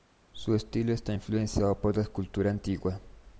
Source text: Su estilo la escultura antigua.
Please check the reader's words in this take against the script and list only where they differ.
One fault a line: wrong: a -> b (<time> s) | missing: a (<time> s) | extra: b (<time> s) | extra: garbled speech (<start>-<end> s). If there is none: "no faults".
extra: está influenciado por (0.9 s)